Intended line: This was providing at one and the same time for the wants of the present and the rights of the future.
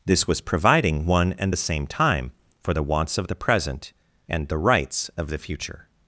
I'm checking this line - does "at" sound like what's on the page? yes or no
no